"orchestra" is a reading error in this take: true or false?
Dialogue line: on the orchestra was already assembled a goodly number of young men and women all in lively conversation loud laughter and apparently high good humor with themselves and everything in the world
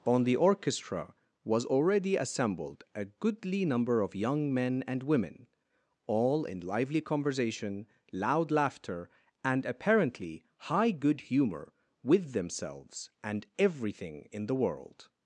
false